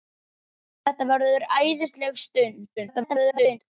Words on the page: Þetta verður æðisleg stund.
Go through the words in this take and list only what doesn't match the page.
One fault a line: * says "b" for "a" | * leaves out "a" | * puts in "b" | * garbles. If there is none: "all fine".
* garbles